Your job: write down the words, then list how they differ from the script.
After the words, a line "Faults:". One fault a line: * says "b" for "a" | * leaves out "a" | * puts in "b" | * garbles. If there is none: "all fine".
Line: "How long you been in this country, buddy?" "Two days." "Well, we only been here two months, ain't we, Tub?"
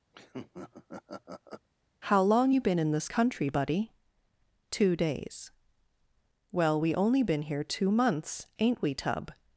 "How long you been in this country, buddy?" "Two days." "Well, we only been here two months, ain't we, Tub?"
Faults:
all fine